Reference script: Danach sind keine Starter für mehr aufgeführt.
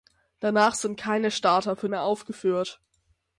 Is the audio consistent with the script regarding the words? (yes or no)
yes